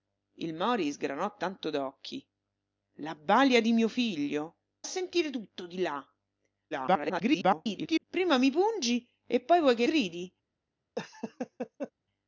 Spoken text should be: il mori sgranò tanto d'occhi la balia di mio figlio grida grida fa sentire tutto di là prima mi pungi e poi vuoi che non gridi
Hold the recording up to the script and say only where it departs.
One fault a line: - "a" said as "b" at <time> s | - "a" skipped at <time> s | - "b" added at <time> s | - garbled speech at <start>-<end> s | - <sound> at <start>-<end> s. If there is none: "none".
- "grida grida fa" skipped at 4.6 s
- garbled speech at 6.7-8.0 s
- "non" skipped at 9.9 s
- laugh at 11.0-11.9 s